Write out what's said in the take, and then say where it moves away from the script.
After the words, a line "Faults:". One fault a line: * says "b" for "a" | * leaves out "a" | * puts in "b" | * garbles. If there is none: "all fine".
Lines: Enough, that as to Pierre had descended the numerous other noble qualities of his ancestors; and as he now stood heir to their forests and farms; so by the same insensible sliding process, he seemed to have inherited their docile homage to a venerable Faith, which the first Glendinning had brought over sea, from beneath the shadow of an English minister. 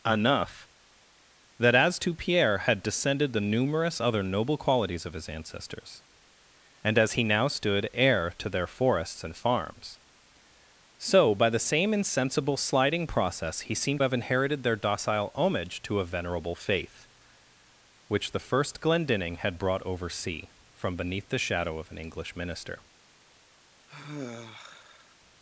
Enough, that as to Pierre had descended the numerous other noble qualities of his ancestors; and as he now stood heir to their forests and farms; so by the same insensible sliding process, he seemed have inherited their docile homage to a venerable Faith, which the first Glendinning had brought over sea, from beneath the shadow of an English minister.
Faults:
* leaves out "to"